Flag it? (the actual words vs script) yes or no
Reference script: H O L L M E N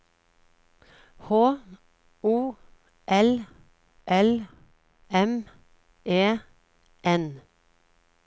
no